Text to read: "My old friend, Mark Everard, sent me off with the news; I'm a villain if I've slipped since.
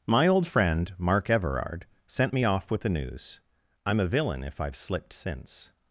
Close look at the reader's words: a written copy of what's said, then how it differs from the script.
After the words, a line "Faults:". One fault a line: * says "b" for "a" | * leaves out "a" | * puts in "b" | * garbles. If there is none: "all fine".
"My old friend, Mark Everard, sent me off with the news; I'm a villain if I've slipped since.
Faults:
all fine